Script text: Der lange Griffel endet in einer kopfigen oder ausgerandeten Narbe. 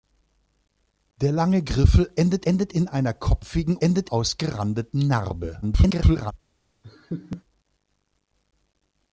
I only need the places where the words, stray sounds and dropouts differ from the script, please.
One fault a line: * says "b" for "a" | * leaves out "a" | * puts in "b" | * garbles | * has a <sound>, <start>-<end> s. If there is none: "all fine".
* puts in "endet"
* says "endet" for "oder"
* garbles
* has a laugh, 6.8-7.4 s